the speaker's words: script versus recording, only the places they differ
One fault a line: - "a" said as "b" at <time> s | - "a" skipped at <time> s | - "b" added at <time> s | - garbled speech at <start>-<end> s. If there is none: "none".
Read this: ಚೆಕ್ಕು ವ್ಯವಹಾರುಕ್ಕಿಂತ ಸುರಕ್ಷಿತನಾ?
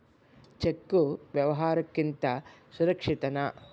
none